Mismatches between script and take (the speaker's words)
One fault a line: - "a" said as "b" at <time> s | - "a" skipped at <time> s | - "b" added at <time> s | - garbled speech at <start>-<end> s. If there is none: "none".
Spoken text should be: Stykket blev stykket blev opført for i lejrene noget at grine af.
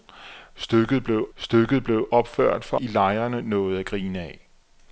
none